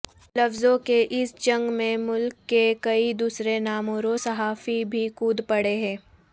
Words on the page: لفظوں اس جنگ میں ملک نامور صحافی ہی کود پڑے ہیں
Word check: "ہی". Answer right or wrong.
wrong